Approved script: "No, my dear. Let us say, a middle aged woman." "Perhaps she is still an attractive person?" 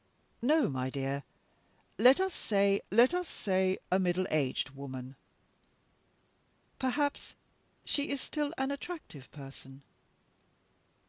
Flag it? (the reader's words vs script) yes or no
yes